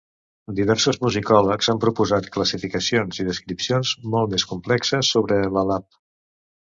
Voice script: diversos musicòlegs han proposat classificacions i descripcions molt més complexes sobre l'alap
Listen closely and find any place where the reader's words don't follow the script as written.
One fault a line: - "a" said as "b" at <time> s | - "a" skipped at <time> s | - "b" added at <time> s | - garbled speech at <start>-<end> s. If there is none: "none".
none